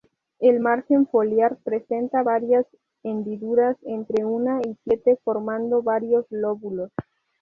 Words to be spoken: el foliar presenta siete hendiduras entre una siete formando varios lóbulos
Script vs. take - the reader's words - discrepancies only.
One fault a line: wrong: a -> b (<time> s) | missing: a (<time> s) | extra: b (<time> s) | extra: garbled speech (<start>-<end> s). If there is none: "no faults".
extra: margen (0.6 s)
wrong: siete -> varias (2.2 s)
extra: y (4.6 s)